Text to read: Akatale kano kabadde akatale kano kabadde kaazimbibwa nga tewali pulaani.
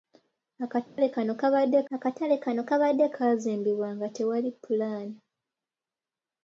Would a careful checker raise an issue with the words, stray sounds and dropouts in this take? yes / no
yes